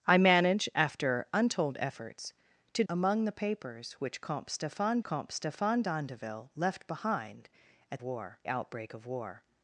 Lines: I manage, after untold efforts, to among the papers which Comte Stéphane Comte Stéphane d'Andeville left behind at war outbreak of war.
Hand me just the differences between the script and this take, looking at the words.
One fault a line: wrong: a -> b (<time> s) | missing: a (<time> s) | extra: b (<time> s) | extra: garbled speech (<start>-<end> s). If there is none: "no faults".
no faults